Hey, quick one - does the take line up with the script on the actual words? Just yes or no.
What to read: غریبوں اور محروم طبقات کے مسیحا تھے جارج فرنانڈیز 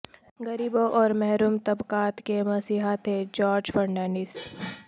yes